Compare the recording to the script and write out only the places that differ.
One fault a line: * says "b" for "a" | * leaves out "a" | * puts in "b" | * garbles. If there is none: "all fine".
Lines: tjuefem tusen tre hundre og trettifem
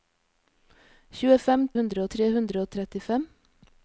* says "hundre" for "tusen"